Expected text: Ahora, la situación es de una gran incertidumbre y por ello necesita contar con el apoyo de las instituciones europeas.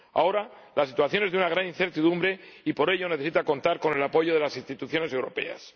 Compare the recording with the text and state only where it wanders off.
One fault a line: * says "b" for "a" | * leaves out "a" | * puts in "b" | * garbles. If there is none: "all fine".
all fine